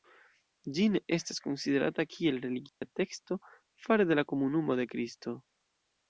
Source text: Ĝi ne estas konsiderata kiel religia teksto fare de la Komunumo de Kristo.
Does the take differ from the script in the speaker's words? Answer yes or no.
no